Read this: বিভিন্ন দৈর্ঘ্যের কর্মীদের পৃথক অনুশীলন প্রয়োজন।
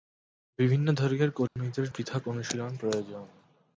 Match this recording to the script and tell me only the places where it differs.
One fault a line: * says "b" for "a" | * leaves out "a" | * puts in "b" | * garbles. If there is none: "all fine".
all fine